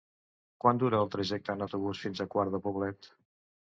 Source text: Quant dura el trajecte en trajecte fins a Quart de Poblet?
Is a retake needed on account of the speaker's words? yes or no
yes